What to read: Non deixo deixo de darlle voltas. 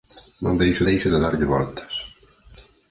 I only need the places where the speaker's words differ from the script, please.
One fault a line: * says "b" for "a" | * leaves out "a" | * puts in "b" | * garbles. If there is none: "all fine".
all fine